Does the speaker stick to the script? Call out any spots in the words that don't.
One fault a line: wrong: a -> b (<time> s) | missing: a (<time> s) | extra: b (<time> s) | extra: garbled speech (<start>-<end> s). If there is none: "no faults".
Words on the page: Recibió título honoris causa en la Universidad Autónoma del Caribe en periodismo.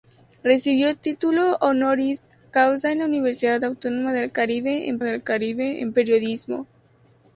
extra: del Caribe en (5.0 s)